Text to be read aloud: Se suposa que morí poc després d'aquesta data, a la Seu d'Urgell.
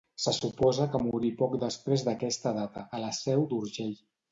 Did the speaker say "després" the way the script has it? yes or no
yes